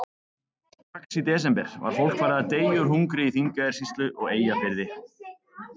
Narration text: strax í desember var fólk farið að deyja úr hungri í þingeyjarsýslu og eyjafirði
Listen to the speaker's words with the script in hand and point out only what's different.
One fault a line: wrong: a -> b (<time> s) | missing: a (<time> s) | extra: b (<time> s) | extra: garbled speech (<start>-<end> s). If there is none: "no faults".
no faults